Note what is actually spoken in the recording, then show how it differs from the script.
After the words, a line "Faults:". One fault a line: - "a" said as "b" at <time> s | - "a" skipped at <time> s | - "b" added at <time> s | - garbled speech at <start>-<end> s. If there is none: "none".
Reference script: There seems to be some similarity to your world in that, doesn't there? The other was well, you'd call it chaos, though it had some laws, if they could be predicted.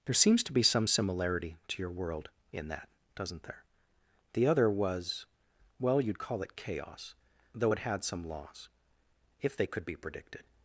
There seems to be some similarity to your world in that, doesn't there? The other was well, you'd call it chaos, though it had some laws, if they could be predicted.
Faults:
none